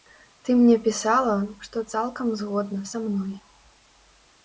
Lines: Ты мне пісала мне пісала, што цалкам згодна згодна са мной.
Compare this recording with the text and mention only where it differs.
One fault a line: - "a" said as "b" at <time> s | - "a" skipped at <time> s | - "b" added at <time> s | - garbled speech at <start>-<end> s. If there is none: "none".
- "мне пісала" skipped at 1.4 s
- "згодна" skipped at 2.9 s